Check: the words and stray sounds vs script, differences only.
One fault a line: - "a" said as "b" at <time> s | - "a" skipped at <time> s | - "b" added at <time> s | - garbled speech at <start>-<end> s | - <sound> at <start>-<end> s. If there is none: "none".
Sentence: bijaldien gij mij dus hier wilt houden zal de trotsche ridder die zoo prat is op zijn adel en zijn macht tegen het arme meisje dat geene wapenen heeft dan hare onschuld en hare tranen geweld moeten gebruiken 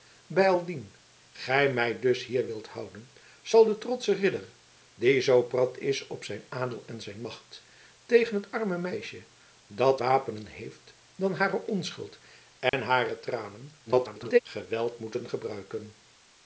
- "geene" skipped at 10.0 s
- dropout at 12.7-12.7 s
- garbled speech at 13.9-14.4 s